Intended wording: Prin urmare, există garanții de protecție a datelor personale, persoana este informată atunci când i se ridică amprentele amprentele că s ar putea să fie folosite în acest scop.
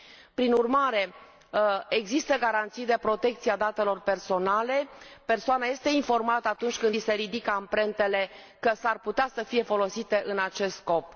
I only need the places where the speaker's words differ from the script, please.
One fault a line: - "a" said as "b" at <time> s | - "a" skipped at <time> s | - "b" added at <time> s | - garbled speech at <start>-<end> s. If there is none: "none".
- "amprentele" skipped at 8.3 s